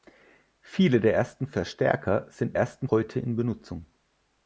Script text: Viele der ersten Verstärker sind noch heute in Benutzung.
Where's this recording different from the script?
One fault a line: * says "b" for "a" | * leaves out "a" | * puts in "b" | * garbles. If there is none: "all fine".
* says "ersten" for "noch"